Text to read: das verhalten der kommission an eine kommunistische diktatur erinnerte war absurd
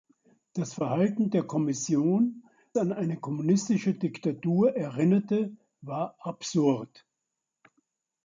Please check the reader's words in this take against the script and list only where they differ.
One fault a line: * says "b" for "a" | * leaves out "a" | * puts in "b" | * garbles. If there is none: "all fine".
all fine